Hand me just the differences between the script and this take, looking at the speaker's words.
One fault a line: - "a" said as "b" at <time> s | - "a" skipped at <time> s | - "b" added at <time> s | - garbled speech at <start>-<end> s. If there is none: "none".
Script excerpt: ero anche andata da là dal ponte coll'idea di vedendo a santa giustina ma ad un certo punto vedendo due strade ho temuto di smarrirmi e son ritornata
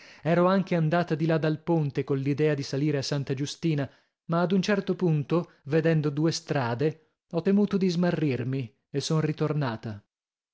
- "da" said as "di" at 1.1 s
- "vedendo" said as "salire" at 2.6 s